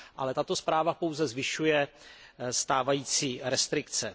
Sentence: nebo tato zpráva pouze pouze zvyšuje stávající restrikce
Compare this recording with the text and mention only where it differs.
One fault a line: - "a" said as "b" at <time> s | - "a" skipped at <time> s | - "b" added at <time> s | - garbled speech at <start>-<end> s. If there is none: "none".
- "nebo" said as "ale" at 0.1 s
- "pouze" skipped at 1.3 s